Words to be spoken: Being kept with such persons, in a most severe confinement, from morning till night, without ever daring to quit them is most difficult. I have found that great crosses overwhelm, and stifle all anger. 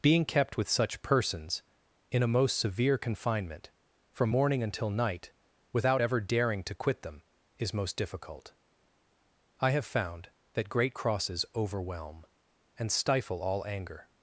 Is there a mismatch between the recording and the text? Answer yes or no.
yes